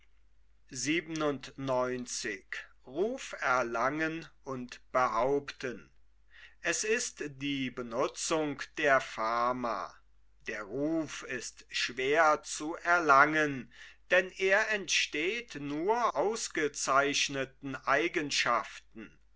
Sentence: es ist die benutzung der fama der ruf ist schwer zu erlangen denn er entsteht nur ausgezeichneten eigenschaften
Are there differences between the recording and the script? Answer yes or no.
no